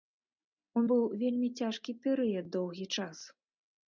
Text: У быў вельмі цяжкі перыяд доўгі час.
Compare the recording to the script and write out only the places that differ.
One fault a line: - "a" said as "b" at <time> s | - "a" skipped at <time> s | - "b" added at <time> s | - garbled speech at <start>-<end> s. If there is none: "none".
none